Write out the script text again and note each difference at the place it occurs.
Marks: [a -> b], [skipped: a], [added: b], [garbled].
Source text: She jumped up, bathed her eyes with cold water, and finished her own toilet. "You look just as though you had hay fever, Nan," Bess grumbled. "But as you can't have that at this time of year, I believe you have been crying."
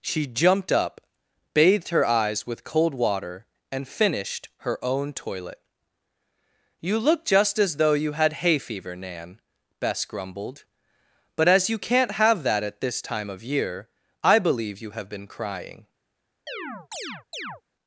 She jumped up, bathed her eyes with cold water, and finished her own toilet. "You look just as though you had hay fever, Nan," Bess grumbled. "But as you can't have that at this time of year, I believe you have been crying."